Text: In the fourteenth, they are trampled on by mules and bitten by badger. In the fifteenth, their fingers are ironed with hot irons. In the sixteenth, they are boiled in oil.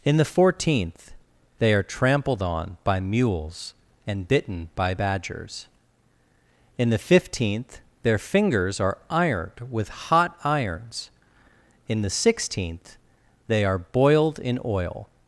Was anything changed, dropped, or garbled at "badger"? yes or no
yes